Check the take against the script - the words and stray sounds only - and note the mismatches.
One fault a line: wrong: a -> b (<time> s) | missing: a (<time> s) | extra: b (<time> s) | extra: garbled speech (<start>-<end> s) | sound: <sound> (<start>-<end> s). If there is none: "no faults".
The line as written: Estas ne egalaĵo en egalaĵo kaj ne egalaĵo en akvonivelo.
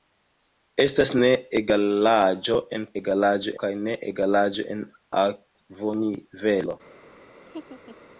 sound: laugh (7.5-8.1 s)